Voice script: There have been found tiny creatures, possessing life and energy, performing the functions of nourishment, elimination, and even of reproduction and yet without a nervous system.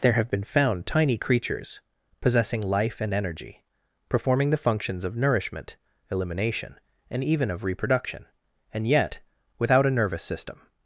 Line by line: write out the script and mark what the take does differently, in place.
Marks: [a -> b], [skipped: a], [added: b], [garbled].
There have been found tiny creatures, possessing life and energy, performing the functions of nourishment, elimination, and even of reproduction and yet without a nervous system.